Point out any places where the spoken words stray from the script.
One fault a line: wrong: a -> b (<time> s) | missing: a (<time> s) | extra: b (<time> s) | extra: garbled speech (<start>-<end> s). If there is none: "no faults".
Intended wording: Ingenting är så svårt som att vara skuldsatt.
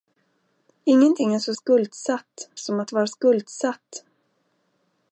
wrong: svårt -> skuldsatt (1.5 s)